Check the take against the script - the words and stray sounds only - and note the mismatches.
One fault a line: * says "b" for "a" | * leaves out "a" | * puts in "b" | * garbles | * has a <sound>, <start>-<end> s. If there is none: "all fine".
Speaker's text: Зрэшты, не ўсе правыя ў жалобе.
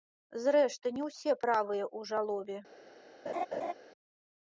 * has a laugh, 3.3-3.7 s